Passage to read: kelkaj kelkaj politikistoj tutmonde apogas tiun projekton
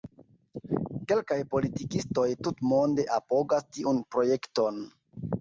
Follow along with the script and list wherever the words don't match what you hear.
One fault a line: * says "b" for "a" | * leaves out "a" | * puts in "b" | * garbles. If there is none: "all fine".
* leaves out "kelkaj"